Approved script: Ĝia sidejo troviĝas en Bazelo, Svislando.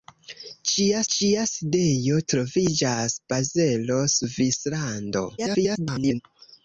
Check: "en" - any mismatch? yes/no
yes